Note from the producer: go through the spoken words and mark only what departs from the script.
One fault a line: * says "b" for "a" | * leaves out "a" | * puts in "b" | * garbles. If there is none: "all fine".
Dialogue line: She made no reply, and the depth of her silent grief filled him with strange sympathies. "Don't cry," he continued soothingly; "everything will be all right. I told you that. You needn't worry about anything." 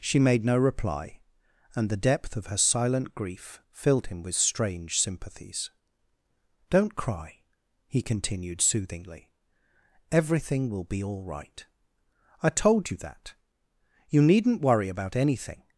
all fine